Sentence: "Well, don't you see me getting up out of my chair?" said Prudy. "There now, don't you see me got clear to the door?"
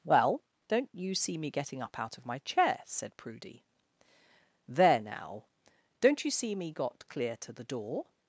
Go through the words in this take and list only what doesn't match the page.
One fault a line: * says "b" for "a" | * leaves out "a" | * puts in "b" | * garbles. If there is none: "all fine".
all fine